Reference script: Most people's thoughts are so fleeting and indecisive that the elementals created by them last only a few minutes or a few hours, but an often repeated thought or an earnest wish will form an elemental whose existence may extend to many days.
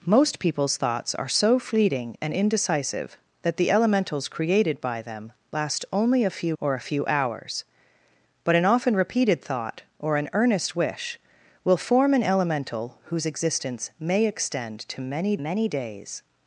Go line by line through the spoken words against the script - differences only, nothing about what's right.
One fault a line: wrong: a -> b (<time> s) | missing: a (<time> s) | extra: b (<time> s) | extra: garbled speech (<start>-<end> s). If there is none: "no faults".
missing: minutes (6.5 s)
extra: many (15.4 s)